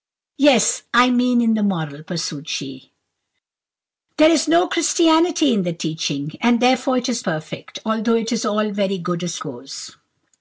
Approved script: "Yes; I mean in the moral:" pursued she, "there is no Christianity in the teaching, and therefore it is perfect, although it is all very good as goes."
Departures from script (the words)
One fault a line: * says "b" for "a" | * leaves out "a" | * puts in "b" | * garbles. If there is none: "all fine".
all fine